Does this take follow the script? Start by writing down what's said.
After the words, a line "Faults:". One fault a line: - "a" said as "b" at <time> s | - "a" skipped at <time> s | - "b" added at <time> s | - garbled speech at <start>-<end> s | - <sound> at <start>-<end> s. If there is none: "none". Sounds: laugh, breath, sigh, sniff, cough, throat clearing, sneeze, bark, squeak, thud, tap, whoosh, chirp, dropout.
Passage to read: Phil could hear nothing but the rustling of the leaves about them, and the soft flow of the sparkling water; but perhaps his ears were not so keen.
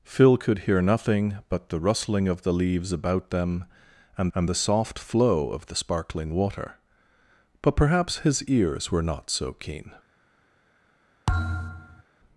Phil could hear nothing but the rustling of the leaves about them, and and the soft flow of the sparkling water; but perhaps his ears were not so keen.
Faults:
- "and" added at 4.3 s
- thud at 11.3-12.0 s